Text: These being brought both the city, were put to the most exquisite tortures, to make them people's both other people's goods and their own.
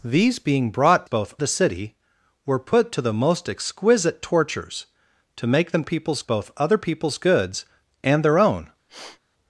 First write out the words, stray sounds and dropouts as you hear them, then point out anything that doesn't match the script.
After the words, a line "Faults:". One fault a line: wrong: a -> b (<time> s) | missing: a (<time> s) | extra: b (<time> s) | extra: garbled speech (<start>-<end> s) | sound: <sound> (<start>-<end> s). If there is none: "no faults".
These being brought both the city, were put to the most exquisite tortures, to make them people's both other people's goods and their own.
Faults:
sound: sniff (8.9-9.2 s)